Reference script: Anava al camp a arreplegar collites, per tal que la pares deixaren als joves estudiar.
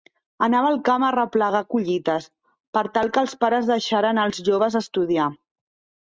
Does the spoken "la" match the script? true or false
false